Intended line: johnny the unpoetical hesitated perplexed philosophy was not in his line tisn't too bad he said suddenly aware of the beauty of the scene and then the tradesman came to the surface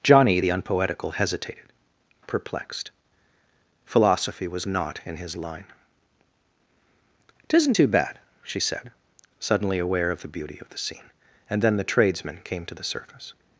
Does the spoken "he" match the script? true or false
false